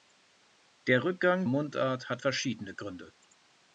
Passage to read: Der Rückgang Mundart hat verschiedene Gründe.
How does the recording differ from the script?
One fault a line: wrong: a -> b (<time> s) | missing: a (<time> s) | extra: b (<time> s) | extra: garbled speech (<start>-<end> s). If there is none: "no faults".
no faults